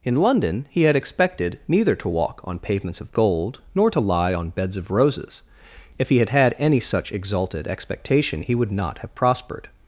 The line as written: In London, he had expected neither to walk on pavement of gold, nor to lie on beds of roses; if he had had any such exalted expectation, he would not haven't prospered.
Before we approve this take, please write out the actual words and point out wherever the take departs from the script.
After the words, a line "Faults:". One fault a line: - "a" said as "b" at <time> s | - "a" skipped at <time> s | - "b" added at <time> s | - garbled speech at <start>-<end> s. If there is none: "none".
In London, he had expected neither to walk on pavements of gold, nor to lie on beds of roses; if he had had any such exalted expectation, he would not have prospered.
Faults:
- "pavement" said as "pavements" at 2.6 s
- "haven't" said as "have" at 9.0 s